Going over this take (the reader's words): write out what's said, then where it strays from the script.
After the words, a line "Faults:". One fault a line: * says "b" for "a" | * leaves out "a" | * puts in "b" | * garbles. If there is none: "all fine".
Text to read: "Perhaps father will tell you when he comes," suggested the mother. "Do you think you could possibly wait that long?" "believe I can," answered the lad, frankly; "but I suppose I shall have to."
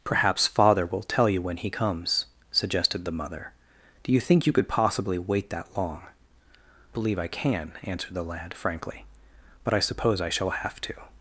"Perhaps father will tell you when he comes," suggested the mother. "Do you think you could possibly wait that long?" "believe I can," answered the lad, frankly; "but I suppose I shall have to."
Faults:
all fine